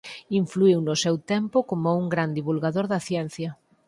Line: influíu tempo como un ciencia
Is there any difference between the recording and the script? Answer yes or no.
yes